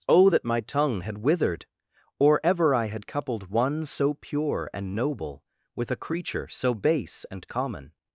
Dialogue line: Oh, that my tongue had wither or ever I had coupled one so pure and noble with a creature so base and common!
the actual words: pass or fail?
fail